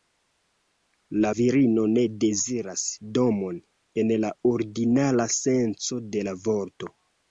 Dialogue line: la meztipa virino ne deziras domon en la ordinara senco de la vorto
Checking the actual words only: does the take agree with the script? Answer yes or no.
no